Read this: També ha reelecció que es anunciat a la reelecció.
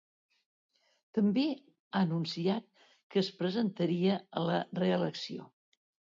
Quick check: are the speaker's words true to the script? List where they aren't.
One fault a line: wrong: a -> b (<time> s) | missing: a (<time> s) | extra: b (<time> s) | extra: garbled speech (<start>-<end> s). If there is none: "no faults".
wrong: reelecció -> anunciat (2.0 s)
wrong: anunciat -> presentaria (3.4 s)